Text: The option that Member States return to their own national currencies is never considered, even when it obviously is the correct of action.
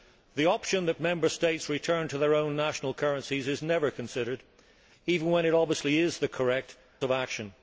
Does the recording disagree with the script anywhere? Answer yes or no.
no